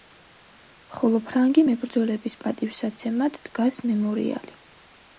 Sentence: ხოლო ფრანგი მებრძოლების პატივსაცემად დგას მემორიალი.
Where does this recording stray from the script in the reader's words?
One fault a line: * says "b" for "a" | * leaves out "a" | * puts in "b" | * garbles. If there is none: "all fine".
all fine